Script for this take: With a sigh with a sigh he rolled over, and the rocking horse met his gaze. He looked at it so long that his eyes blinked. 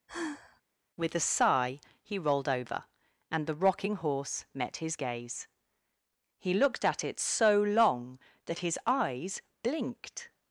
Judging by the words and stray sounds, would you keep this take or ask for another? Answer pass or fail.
fail